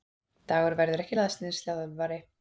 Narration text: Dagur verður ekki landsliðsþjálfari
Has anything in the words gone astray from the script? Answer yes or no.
no